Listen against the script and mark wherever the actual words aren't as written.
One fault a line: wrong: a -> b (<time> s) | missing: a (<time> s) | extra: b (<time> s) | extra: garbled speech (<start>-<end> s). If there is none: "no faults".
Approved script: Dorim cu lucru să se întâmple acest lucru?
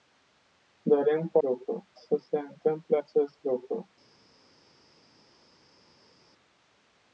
no faults